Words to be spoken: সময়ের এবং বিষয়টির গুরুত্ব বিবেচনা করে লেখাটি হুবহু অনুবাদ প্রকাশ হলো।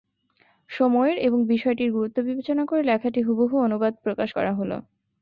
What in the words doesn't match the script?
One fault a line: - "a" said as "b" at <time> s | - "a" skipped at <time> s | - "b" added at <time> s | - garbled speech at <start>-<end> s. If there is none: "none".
- "করা" added at 4.3 s